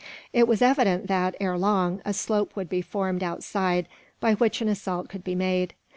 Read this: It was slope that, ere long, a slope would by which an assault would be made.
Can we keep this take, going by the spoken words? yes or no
no